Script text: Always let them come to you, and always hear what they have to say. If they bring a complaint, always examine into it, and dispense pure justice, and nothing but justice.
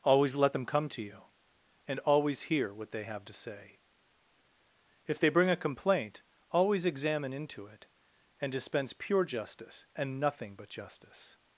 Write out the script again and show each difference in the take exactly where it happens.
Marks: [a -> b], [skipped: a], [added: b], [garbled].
Always let them come to you, and always hear what they have to say. If they bring a complaint, always examine into it, and dispense pure justice, and nothing but justice.